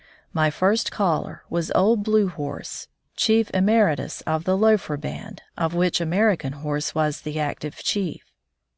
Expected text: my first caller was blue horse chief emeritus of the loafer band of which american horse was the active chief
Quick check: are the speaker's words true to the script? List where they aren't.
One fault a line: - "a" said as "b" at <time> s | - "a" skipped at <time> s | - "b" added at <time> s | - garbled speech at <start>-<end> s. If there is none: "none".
- "old" added at 1.8 s